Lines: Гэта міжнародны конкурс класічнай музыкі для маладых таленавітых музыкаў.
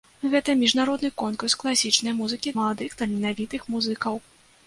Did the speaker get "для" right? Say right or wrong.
wrong